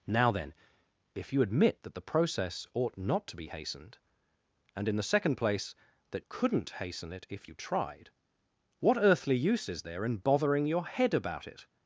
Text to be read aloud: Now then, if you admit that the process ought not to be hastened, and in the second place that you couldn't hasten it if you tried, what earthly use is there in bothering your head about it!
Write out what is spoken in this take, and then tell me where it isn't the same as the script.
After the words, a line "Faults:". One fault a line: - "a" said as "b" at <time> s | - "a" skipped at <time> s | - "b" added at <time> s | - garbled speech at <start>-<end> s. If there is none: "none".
Now then, if you admit that the process ought not to be hastened, and in the second place that couldn't hasten it if you tried, what earthly use is there in bothering your head about it!
Faults:
- "you" skipped at 6.2 s